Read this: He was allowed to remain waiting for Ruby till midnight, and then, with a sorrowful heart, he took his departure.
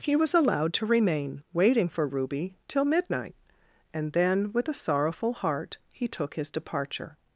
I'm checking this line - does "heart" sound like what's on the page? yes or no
yes